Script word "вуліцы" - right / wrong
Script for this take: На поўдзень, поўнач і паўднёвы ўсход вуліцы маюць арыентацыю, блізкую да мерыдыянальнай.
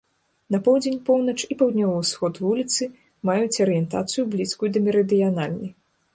right